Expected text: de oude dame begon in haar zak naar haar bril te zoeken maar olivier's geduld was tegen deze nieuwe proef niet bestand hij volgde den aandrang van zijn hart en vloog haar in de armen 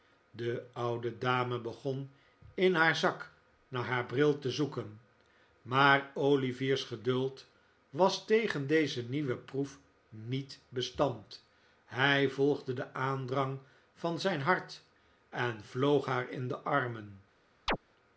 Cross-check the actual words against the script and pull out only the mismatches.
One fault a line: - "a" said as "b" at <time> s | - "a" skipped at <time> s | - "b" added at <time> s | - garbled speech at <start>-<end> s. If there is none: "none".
none